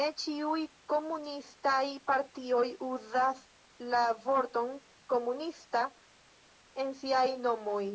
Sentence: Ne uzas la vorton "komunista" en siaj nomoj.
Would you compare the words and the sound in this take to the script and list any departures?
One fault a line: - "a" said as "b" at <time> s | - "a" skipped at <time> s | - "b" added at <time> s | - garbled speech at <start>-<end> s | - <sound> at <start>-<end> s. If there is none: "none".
- "ĉiuj komunistaj partioj" added at 0.2 s